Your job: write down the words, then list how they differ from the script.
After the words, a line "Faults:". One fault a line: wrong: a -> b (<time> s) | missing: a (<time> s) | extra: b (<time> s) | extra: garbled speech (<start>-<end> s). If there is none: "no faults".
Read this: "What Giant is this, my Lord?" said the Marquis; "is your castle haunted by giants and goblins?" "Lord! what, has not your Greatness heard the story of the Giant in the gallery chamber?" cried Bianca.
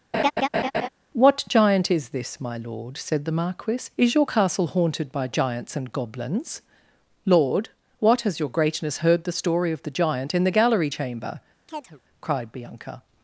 "What Giant is this, my Lord?" said the Marquis; "is your castle haunted by giants and goblins?" "Lord! what, has your Greatness heard the story of the Giant in the gallery chamber?" cried Bianca.
Faults:
missing: not (8.4 s)